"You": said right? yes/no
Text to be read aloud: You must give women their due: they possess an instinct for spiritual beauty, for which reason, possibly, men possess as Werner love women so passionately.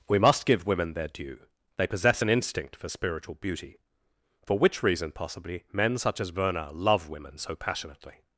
no